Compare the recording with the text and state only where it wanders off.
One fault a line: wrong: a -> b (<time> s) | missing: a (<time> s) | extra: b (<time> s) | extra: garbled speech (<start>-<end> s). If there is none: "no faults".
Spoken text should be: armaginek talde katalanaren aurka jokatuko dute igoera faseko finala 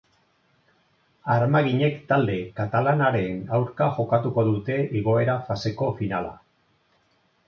no faults